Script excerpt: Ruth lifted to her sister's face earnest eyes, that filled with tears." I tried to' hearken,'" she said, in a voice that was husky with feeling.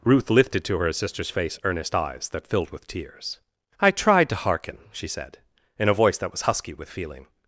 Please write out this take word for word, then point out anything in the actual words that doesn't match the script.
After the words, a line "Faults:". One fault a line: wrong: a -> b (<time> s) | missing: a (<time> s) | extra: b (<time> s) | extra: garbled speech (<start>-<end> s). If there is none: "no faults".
Ruth lifted to her sister's face earnest eyes, that filled with tears." I tried to' hearken,'" she said, in a voice that was husky with feeling.
Faults:
no faults